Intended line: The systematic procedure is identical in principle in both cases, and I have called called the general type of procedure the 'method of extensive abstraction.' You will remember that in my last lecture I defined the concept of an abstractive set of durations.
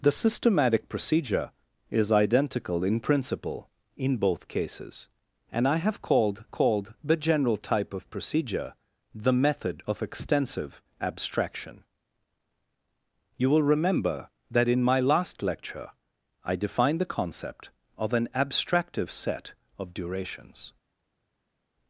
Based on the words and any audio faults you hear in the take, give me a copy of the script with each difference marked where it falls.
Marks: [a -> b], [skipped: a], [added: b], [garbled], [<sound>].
The systematic procedure is identical in principle in both cases, and I have called called the general type of procedure the 'method of extensive abstraction.' You will remember that in my last lecture I defined the concept of an abstractive set of durations.